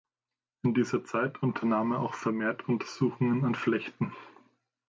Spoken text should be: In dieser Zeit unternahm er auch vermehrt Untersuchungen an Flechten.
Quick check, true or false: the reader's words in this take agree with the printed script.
true